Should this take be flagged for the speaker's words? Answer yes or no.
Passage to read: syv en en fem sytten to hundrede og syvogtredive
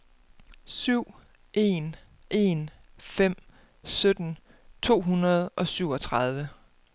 no